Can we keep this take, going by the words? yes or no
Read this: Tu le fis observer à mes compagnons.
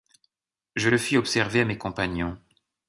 no